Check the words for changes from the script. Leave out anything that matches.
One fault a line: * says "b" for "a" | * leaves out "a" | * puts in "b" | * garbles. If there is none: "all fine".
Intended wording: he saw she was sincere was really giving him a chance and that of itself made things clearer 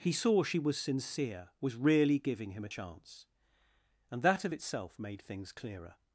all fine